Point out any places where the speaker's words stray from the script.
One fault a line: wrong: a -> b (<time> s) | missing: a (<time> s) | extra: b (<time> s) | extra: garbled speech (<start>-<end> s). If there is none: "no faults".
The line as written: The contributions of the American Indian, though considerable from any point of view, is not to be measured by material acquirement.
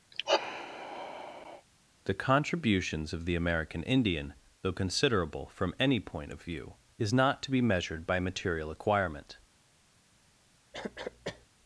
no faults